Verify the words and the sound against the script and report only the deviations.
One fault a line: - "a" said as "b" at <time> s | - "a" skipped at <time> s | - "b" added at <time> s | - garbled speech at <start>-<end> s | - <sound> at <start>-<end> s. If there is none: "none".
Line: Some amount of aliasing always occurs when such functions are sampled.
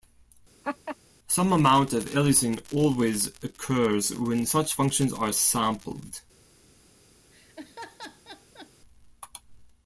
- laugh at 0.6-1.0 s
- laugh at 7.3-8.7 s